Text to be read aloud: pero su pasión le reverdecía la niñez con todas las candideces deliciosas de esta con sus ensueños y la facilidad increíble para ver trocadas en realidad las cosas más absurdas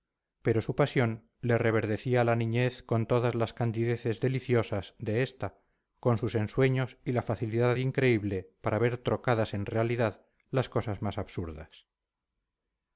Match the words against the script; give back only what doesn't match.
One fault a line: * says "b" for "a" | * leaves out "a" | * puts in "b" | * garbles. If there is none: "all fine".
all fine